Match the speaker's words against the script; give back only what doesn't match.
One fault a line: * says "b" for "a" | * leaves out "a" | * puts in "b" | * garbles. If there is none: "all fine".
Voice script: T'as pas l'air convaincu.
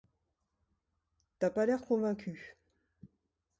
all fine